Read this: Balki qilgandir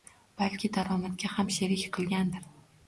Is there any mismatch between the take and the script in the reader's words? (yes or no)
yes